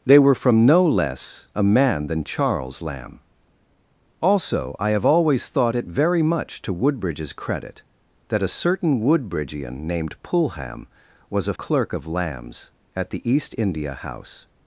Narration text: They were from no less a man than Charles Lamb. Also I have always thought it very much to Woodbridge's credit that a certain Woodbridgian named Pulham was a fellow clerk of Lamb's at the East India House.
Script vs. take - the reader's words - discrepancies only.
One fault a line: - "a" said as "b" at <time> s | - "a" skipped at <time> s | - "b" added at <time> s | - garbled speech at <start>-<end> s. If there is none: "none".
- "fellow" skipped at 11.5 s